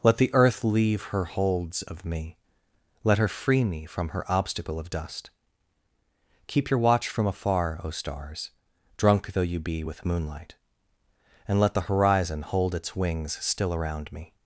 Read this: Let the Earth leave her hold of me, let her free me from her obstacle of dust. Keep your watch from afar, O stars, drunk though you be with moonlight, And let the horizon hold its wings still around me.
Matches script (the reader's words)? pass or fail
fail